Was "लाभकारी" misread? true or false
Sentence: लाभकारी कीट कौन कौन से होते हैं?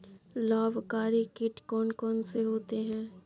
false